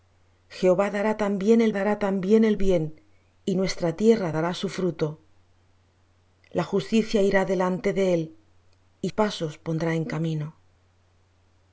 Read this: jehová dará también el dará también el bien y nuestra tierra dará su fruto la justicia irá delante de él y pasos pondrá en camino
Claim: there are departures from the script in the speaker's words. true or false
false